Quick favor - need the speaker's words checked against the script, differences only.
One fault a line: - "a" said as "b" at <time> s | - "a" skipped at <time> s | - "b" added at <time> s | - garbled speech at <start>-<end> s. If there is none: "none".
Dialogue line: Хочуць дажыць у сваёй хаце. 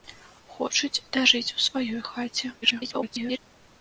- garbled speech at 2.6-3.4 s